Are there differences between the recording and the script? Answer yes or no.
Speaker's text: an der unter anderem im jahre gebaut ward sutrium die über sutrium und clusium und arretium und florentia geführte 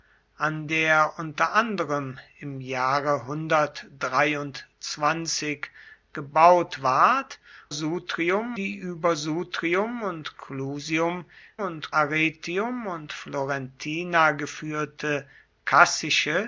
no